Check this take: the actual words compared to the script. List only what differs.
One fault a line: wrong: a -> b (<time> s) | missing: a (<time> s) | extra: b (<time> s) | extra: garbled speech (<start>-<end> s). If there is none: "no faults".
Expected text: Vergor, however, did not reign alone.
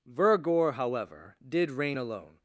missing: not (1.7 s)